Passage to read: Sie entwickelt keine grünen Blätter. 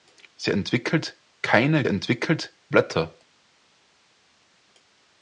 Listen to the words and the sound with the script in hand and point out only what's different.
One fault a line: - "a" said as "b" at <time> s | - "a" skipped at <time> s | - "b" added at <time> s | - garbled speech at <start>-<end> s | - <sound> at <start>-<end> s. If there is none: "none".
- "grünen" said as "entwickelt" at 1.9 s